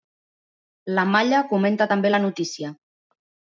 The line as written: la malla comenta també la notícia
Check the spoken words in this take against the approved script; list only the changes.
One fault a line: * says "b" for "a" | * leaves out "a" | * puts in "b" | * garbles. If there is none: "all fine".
all fine